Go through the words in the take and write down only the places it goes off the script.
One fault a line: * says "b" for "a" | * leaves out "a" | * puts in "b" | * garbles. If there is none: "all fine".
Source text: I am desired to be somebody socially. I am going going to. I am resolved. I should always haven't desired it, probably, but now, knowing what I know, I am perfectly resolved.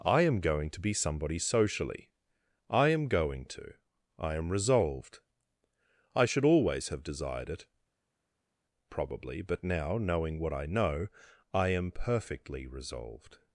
* says "going" for "desired"
* leaves out "going"
* says "have" for "haven't"